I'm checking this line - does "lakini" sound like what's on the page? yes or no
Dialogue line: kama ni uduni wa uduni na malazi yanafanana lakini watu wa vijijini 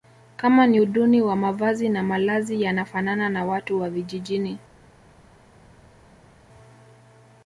no